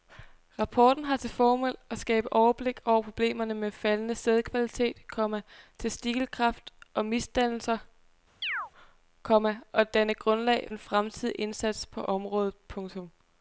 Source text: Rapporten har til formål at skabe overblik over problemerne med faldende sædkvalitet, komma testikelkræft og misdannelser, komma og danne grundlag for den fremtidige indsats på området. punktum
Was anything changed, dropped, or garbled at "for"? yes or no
yes